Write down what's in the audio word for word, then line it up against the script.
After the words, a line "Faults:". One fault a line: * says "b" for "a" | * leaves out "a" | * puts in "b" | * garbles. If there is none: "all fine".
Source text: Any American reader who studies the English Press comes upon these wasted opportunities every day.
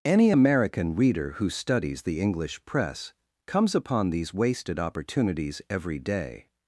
Any American reader who studies the English Press comes upon these wasted opportunities every day.
Faults:
all fine